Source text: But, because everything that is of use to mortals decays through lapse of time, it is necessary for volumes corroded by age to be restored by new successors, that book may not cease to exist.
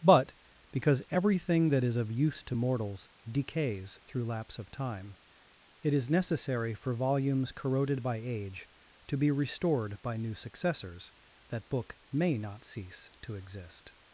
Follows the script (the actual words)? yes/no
yes